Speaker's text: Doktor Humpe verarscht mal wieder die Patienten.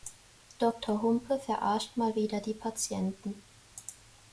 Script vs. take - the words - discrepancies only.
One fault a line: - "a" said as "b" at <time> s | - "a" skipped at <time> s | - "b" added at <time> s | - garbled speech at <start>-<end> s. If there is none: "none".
none